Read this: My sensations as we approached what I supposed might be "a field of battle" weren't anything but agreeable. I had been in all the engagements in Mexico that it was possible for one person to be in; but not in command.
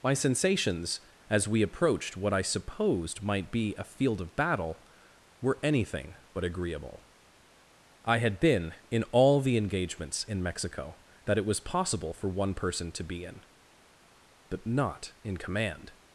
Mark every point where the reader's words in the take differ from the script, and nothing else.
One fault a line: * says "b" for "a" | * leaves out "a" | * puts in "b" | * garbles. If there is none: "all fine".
* says "were" for "weren't"